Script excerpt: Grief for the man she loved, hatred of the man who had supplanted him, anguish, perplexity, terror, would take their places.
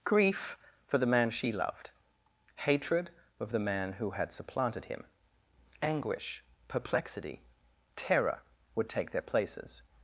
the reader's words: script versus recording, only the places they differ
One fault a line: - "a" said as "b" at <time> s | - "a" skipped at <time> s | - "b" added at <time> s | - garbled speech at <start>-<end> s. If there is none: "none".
none